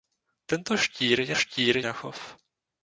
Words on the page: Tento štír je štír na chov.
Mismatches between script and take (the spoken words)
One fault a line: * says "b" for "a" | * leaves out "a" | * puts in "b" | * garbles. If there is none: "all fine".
all fine